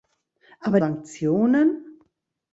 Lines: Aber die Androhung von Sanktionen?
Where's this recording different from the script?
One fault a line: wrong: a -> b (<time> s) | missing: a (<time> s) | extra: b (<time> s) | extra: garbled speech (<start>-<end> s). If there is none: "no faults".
missing: die Androhung von (0.8 s)